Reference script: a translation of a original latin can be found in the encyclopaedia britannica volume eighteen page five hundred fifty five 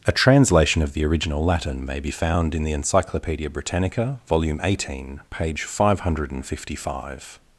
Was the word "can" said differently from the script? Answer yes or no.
yes